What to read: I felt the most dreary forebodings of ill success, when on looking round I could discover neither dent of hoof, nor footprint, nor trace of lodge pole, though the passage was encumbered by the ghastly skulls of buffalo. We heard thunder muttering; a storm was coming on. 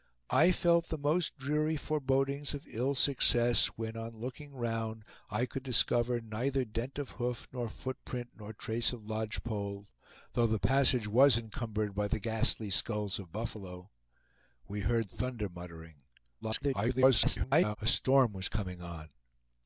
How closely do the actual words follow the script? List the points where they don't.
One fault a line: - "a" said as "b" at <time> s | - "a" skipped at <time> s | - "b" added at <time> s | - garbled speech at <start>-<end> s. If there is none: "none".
- garbled speech at 16.4-17.8 s